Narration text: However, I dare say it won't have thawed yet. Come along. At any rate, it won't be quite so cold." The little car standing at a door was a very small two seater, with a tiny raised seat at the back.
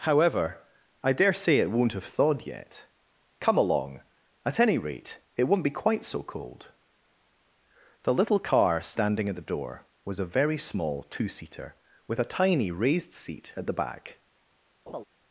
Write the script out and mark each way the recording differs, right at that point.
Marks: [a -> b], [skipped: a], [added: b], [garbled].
However, I dare say it won't have thawed yet. Come along. At any rate, it won't be quite so cold." The little car standing at [a -> the] door was a very small two seater, with a tiny raised seat at the back.